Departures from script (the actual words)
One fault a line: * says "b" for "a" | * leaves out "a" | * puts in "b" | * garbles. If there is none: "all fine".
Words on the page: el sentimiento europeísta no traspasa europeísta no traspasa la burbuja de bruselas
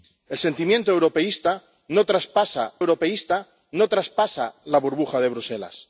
all fine